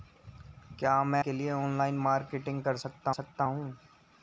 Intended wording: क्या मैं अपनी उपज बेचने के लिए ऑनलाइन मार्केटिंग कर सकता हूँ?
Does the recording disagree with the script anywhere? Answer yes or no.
yes